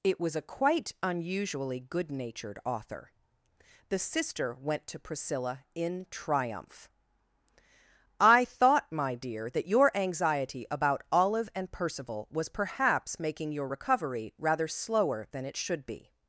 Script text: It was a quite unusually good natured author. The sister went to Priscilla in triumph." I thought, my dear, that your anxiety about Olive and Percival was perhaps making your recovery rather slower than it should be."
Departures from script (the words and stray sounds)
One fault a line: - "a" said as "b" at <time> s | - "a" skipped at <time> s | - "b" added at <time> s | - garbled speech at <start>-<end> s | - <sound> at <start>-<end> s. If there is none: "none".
none